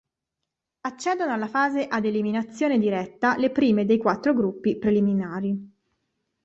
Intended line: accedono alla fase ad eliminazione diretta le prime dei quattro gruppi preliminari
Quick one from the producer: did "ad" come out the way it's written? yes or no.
yes